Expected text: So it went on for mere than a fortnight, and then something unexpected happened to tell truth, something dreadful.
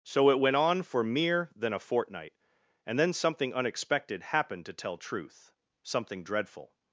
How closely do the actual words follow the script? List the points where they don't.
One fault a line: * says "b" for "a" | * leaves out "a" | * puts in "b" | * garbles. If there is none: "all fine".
all fine